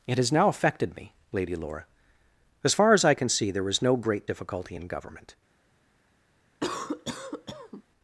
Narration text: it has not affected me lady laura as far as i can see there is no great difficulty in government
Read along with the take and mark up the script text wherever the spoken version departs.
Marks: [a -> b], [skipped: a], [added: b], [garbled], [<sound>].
it has [not -> now] affected me lady laura as far as i can see there is no great difficulty in government [cough]